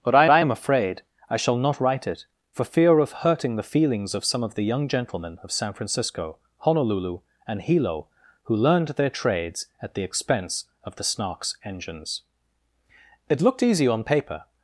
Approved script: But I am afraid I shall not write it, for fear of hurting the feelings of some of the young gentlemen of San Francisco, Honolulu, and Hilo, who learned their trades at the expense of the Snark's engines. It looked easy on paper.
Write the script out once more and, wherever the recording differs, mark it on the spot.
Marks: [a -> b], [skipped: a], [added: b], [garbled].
But I [added: I] am afraid I shall not write it, for fear of hurting the feelings of some of the young gentlemen of San Francisco, Honolulu, and Hilo, who learned their trades at the expense of the Snark's engines. It looked easy on paper.